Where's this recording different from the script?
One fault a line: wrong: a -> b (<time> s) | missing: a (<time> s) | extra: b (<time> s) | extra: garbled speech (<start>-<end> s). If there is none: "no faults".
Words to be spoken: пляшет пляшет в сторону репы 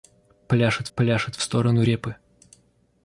no faults